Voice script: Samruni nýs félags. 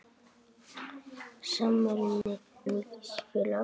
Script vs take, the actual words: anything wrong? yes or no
no